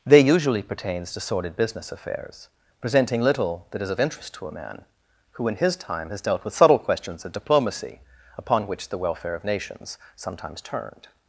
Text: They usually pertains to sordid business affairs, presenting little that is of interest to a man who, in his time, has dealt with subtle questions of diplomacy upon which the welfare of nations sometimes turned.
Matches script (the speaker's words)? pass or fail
pass